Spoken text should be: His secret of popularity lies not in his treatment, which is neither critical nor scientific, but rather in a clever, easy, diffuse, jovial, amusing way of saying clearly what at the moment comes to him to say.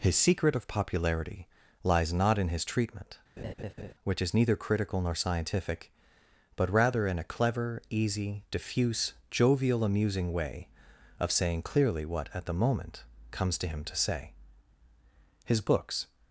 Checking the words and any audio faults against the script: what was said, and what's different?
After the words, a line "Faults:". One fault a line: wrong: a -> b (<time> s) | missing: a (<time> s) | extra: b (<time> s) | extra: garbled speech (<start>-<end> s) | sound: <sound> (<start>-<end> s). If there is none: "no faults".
His secret of popularity lies not in his treatment, which is neither critical nor scientific, but rather in a clever, easy, diffuse, jovial, amusing way of saying clearly what at the moment comes to him to say. His books
Faults:
sound: laugh (3.4-3.9 s)
extra: His books (15.4 s)